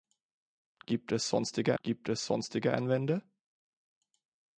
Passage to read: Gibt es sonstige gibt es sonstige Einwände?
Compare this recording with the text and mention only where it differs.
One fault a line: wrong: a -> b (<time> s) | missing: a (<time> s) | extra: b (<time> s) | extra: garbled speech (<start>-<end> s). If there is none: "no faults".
no faults